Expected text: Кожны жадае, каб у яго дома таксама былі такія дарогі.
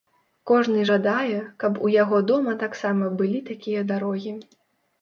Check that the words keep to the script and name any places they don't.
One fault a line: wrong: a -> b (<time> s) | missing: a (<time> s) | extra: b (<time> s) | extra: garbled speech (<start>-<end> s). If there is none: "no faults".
no faults